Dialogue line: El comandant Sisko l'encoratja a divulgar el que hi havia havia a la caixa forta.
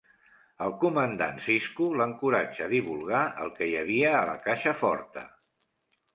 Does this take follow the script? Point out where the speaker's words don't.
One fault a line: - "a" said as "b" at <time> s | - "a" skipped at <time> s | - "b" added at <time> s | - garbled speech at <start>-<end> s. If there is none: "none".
- "havia" skipped at 4.2 s